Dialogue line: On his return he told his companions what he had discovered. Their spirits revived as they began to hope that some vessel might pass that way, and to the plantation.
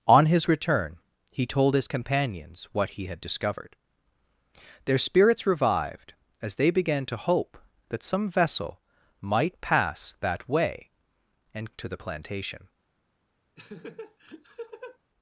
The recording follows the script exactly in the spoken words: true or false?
true